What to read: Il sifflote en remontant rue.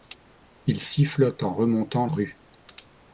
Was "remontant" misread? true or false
false